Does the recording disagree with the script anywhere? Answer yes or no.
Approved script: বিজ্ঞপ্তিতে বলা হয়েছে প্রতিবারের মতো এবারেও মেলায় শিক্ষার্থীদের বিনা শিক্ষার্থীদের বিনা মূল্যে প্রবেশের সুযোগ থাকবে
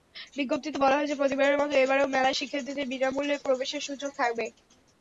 yes